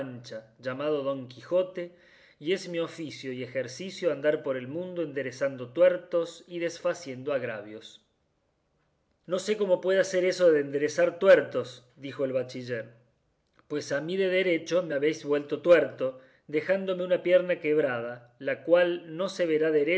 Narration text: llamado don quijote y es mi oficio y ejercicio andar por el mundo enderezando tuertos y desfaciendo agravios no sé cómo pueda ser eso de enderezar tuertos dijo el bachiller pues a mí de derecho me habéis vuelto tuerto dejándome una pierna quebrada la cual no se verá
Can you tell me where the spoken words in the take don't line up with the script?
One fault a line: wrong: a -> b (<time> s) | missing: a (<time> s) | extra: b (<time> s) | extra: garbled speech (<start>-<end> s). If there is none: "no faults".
no faults